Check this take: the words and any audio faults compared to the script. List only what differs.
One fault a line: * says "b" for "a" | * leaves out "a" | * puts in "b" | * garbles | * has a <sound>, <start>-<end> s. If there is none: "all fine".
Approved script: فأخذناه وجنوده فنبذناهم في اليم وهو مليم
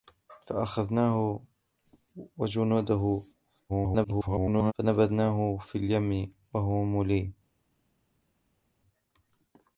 * garbles